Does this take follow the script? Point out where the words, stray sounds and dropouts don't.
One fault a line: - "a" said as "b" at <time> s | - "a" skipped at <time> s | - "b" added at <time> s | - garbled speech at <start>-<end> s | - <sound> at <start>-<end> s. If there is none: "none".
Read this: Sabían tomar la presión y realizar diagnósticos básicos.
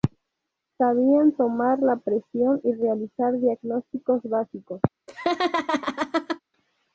- laugh at 5.1-6.4 s